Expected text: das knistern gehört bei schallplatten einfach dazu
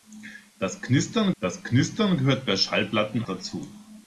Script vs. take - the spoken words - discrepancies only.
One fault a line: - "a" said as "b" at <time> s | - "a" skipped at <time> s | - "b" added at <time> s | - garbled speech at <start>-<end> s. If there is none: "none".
- "das knistern" added at 1.4 s
- "einfach" skipped at 3.2 s